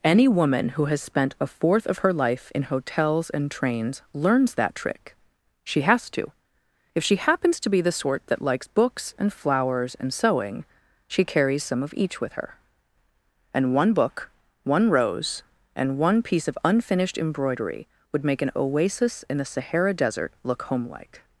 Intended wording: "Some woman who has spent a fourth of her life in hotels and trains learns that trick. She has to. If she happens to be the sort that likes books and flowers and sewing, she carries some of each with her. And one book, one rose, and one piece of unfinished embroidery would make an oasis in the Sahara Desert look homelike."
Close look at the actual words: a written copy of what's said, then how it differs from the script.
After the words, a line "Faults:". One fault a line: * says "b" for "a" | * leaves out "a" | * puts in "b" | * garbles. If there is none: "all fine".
"Any woman who has spent a fourth of her life in hotels and trains learns that trick. She has to. If she happens to be the sort that likes books and flowers and sewing, she carries some of each with her. And one book, one rose, and one piece of unfinished embroidery would make an oasis in the Sahara Desert look homelike."
Faults:
* says "Any" for "Some"